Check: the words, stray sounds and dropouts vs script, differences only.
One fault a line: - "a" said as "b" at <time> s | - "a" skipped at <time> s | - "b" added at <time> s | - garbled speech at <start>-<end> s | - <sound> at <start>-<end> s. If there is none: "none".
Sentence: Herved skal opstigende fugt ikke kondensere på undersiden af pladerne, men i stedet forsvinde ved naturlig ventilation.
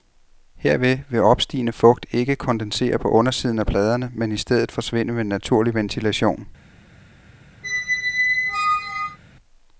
- "skal" said as "vil" at 1.1 s
- squeak at 7.6-9.2 s